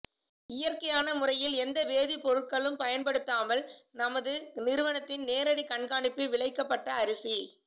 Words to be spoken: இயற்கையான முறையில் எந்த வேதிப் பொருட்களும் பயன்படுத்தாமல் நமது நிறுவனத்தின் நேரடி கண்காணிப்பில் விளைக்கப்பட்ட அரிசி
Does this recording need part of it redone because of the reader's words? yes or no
no